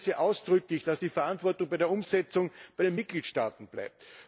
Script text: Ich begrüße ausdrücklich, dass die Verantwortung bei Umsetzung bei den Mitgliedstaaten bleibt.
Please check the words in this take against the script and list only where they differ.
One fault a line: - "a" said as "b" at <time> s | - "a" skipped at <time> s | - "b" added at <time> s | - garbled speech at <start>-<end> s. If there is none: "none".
- "der" added at 1.8 s